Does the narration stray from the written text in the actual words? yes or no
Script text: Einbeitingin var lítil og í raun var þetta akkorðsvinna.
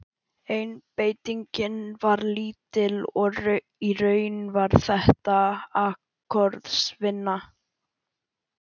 no